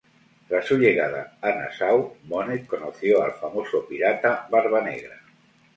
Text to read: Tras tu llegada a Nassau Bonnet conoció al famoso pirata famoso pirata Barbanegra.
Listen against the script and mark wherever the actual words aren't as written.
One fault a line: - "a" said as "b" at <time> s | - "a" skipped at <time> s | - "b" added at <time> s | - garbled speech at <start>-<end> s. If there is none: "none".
- "tu" said as "su" at 0.6 s
- "famoso pirata" skipped at 4.5 s